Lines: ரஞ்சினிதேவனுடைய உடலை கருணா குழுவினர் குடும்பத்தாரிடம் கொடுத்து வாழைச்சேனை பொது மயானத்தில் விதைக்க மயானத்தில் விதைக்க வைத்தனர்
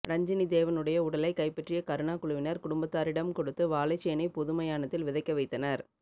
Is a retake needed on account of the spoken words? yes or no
yes